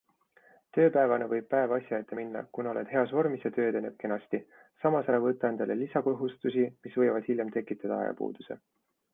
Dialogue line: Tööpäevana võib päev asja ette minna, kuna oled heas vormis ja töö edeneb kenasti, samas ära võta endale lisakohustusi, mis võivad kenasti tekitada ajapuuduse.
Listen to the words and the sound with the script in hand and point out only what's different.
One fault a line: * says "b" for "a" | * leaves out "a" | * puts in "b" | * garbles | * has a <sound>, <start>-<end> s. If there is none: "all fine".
* says "hiljem" for "kenasti"